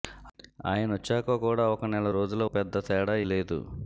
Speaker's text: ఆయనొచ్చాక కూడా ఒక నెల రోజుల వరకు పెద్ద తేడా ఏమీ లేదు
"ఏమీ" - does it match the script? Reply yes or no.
no